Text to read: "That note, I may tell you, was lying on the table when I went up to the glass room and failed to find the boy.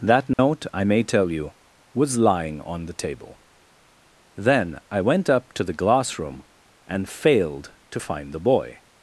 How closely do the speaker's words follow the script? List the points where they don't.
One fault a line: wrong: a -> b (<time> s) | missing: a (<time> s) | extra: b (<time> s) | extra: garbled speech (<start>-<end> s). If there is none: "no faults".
wrong: when -> then (4.3 s)